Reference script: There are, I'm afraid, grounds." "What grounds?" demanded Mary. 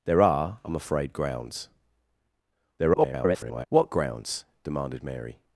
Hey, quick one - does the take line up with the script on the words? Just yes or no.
no